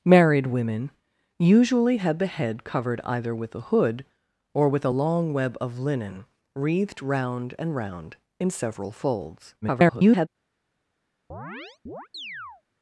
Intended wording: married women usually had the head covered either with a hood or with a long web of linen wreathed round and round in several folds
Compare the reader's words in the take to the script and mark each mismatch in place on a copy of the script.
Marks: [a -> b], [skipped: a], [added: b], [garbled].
married women usually had the head covered either with a hood or with a long web of linen wreathed round and round in several folds [garbled]